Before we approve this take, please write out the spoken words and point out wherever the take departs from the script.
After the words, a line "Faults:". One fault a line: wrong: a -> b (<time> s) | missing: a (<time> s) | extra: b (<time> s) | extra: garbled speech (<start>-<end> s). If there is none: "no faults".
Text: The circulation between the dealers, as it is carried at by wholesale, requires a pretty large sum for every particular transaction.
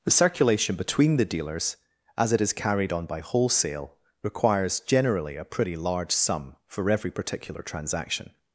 The circulation between the dealers, as it is carried on by wholesale, requires generally a pretty large sum for every particular transaction.
Faults:
wrong: at -> on (2.9 s)
extra: generally (4.8 s)